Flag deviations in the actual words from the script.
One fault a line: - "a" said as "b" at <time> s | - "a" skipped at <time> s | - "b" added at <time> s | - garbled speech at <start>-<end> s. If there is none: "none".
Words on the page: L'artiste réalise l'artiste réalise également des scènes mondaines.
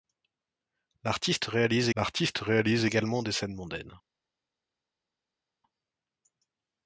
none